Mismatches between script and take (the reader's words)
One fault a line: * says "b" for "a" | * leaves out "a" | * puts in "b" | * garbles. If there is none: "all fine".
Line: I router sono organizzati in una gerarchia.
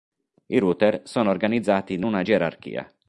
all fine